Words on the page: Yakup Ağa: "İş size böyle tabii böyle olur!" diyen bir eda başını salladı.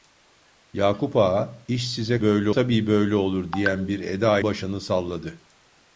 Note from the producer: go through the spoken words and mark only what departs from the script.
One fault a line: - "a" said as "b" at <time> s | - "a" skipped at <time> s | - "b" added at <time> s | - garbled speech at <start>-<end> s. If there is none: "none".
none